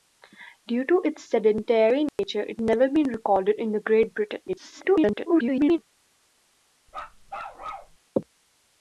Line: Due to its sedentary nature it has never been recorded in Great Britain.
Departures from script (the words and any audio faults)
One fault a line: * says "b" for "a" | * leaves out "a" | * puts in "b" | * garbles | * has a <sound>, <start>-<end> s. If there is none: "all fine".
* has a dropout, 2.1-2.2 s
* leaves out "has"
* garbles
* has a bark, 6.9-8.0 s